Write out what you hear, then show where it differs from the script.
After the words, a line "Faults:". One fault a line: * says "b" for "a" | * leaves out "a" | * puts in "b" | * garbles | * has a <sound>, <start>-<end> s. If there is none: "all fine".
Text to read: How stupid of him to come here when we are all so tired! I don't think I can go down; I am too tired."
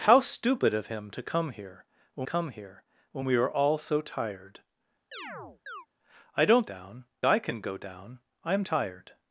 How stupid of him to come here when come here when we are all so tired! I don't down I can go down; I am tired."
Faults:
* puts in "come here when"
* has a chirp, 5.1-5.9 s
* says "down" for "think"
* leaves out "too"